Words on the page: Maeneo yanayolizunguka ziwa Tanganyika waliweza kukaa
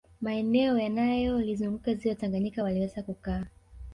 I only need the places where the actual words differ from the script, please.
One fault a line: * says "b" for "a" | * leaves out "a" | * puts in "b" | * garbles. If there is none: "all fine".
all fine